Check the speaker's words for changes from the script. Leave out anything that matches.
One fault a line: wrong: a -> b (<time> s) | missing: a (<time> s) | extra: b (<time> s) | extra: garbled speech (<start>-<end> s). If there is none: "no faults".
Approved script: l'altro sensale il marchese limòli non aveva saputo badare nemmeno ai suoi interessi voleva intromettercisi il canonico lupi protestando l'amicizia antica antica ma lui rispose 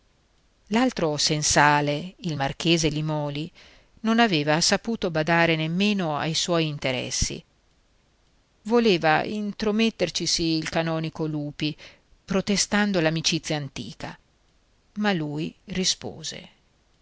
missing: antica (14.2 s)